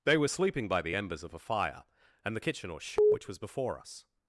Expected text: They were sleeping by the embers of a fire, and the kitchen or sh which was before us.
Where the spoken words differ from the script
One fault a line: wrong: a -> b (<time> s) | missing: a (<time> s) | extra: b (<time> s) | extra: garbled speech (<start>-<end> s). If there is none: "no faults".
no faults